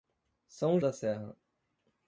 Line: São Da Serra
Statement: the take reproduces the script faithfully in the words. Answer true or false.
true